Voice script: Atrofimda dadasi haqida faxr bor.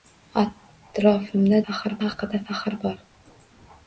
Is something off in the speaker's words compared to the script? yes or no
yes